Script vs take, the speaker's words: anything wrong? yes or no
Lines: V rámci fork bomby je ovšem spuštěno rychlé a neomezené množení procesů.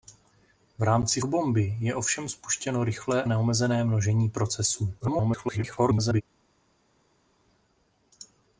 yes